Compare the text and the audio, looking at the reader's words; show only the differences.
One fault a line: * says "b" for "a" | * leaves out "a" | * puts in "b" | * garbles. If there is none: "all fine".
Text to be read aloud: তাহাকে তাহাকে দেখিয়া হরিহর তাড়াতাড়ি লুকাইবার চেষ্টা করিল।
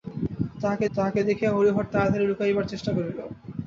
all fine